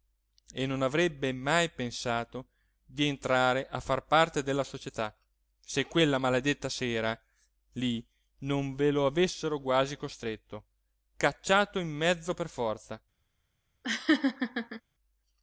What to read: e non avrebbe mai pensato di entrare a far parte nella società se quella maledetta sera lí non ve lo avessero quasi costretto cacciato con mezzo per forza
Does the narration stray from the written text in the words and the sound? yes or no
yes